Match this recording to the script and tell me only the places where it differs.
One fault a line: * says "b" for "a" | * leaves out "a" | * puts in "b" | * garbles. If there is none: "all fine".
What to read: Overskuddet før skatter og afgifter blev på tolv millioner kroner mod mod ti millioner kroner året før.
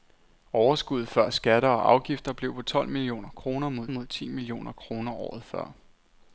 all fine